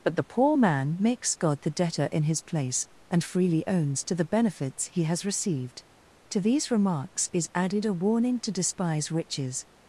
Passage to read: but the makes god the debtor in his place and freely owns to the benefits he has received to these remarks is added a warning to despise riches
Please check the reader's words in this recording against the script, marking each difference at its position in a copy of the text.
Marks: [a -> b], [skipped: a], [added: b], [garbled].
but the [added: poor man] makes god the debtor in his place and freely owns to the benefits he has received to these remarks is added a warning to despise riches